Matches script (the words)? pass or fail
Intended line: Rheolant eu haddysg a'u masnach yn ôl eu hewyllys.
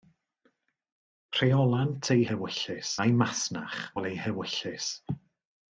fail